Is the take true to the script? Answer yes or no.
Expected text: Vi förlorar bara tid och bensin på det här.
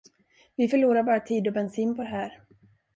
yes